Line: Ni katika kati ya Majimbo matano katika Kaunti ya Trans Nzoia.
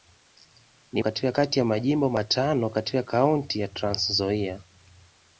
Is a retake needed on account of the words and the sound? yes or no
no